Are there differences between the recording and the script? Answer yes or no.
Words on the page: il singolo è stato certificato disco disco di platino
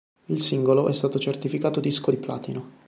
yes